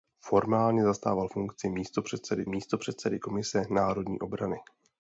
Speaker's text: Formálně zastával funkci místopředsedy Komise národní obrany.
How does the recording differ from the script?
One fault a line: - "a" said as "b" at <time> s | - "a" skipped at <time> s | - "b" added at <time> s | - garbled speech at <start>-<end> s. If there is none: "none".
- "místopředsedy" added at 2.5 s